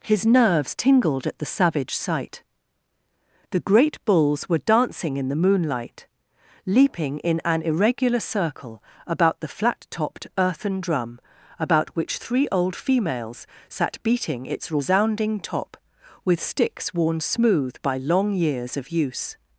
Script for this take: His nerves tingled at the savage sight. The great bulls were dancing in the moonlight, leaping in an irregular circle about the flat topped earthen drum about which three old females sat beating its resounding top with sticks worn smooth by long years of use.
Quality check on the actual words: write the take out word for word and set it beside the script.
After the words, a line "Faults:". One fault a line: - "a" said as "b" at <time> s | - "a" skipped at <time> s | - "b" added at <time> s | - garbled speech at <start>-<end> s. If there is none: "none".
His nerves tingled at the savage sight. The great bulls were dancing in the moonlight, leaping in an irregular circle about the flat topped earthen drum about which three old females sat beating its resounding top with sticks worn smooth by long years of use.
Faults:
none